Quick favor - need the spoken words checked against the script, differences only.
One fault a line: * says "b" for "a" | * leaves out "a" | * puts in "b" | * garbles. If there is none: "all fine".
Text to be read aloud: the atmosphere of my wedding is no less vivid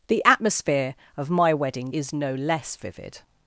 all fine